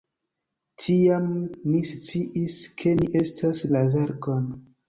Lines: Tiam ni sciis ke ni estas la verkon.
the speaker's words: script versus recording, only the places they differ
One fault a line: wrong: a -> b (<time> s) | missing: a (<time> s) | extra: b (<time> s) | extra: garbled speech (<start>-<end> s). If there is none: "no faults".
no faults